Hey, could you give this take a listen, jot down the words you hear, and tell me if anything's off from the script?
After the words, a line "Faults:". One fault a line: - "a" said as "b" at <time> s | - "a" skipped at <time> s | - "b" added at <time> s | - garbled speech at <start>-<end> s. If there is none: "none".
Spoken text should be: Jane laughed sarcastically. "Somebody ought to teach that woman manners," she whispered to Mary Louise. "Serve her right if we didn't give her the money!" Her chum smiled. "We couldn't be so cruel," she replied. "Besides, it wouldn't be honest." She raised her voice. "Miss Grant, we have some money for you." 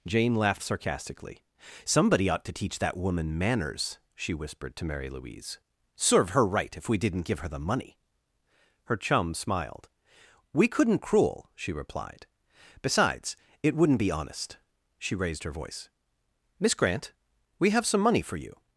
Jane laughed sarcastically. "Somebody ought to teach that woman manners," she whispered to Mary Louise. "Serve her right if we didn't give her the money!" Her chum smiled. "We couldn't cruel," she replied. "Besides, it wouldn't be honest." She raised her voice. "Miss Grant, we have some money for you."
Faults:
- "be so" skipped at 11.0 s